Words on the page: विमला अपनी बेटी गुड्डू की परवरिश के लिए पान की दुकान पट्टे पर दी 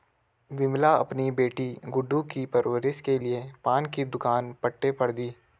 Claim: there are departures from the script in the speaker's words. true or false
false